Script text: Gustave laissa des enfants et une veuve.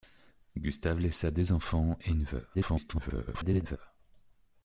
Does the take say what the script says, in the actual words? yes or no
no